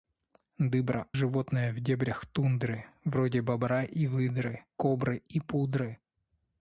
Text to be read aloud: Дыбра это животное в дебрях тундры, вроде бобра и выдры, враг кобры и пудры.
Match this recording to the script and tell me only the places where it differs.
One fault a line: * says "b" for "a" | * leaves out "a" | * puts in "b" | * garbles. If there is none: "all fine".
* leaves out "это"
* leaves out "враг"